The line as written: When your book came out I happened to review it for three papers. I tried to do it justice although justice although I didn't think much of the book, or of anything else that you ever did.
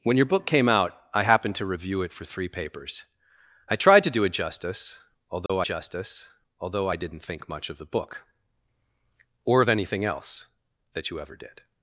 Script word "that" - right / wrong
right